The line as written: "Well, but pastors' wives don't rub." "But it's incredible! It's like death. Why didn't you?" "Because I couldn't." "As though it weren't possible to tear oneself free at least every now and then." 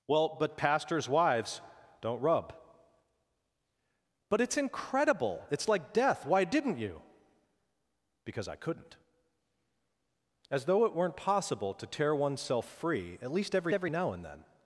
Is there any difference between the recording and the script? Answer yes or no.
yes